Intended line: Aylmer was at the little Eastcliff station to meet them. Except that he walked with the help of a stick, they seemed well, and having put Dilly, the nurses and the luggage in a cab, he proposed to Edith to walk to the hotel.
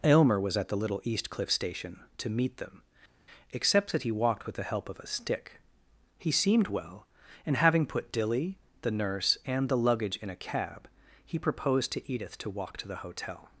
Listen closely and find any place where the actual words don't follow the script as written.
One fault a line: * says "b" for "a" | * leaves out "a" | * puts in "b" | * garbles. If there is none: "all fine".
* says "he" for "they"
* says "nurse" for "nurses"